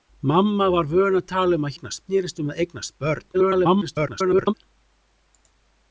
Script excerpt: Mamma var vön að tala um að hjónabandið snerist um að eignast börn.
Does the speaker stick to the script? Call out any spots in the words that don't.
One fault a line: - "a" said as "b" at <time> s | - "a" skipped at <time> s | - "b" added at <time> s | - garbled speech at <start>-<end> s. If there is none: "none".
- "hjónabandið" said as "eignast" at 1.8 s
- garbled speech at 3.3-4.5 s